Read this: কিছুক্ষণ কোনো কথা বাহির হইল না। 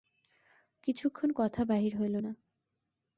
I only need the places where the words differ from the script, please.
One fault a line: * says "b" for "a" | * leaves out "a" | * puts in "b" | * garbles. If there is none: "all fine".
* leaves out "কোনো"